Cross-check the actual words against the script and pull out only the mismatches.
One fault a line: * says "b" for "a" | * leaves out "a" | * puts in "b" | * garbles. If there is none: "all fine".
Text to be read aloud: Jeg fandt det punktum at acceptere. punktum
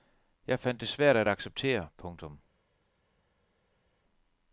* says "svært" for "punktum"